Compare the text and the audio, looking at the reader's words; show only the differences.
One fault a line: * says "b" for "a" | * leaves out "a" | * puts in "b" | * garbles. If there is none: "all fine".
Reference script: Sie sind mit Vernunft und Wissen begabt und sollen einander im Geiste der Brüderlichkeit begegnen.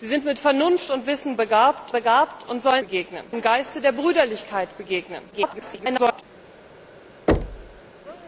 * puts in "begabt"
* says "begegnen" for "einander"
* garbles